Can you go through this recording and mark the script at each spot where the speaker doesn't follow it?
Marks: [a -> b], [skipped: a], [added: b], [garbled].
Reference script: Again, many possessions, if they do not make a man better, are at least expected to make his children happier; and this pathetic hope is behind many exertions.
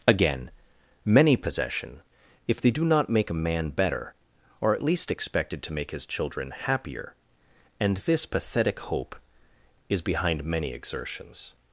Again, many [possessions, -> possession] if they do not make a man better, are at least expected to make his children happier; and this pathetic hope is behind many exertions.